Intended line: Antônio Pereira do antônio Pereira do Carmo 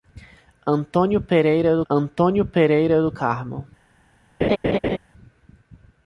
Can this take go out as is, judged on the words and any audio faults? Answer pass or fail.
fail